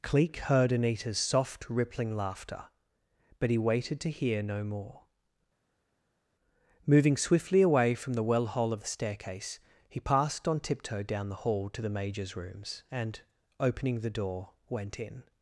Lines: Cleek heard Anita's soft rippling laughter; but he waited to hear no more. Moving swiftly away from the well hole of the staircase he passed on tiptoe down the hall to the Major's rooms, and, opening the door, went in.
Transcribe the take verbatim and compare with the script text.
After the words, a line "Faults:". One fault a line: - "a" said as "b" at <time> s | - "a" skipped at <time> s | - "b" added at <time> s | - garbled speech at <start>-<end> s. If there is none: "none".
Cleek heard Anita's soft rippling laughter; but he waited to hear no more. Moving swiftly away from the well hole of the staircase he passed on tiptoe down the hall to the Major's rooms, and, opening the door, went in.
Faults:
none